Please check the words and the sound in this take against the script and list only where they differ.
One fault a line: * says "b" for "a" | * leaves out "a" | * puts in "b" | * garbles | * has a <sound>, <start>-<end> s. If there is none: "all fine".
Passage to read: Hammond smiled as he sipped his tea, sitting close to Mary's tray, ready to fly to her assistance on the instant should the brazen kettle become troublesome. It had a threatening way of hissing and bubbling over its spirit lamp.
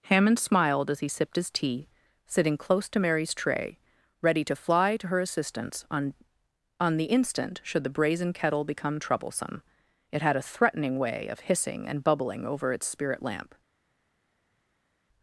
* puts in "on"